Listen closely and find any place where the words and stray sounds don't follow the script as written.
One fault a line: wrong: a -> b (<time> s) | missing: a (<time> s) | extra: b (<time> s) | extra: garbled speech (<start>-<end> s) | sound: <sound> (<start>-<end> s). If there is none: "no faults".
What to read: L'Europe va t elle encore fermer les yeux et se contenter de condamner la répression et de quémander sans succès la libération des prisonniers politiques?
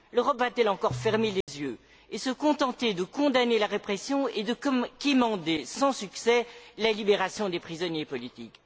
sound: dropout (1.4-1.5 s)